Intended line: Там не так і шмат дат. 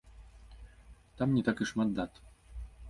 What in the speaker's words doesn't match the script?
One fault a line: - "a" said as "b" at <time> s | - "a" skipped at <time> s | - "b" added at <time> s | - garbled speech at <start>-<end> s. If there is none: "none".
none